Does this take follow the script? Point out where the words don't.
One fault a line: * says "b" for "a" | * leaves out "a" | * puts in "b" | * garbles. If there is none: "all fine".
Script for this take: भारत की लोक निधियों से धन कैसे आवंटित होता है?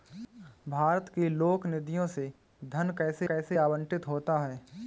* puts in "कैसे"